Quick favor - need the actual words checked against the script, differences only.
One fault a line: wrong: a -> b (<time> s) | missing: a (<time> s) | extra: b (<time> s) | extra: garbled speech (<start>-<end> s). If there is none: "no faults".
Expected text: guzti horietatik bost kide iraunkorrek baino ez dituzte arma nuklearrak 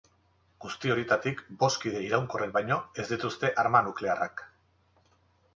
no faults